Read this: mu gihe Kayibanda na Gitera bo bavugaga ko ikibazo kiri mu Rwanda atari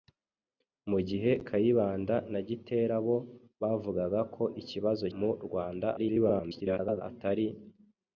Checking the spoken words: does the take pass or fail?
fail